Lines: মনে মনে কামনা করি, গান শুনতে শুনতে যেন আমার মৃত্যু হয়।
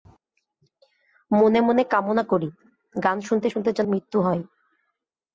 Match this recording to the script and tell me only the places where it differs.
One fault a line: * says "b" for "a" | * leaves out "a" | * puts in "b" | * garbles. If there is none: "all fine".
* leaves out "আমার"